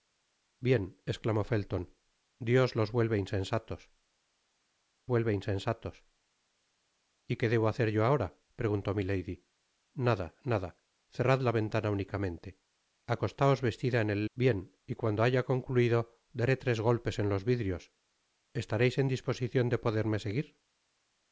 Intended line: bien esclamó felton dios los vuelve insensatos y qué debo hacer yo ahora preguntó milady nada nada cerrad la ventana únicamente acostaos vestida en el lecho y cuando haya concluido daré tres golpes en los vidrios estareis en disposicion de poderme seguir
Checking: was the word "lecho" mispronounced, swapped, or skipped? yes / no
yes